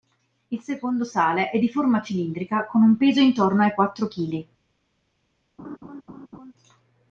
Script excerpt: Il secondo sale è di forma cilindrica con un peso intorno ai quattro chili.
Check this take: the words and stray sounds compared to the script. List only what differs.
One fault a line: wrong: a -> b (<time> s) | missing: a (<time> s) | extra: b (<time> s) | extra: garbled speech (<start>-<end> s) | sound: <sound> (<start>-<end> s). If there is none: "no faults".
sound: laugh (5.6-6.5 s)